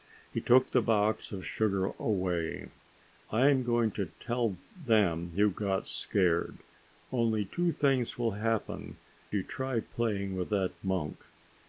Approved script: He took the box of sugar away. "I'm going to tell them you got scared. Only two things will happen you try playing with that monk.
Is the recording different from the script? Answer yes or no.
no